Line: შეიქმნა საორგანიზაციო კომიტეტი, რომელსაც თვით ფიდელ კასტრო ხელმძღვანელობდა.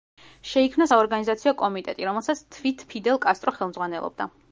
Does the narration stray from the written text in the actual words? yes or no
no